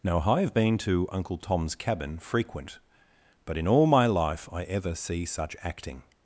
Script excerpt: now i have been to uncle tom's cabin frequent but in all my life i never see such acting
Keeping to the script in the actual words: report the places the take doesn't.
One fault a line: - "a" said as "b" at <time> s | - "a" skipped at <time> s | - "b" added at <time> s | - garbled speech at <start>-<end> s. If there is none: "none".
- "never" said as "ever" at 4.6 s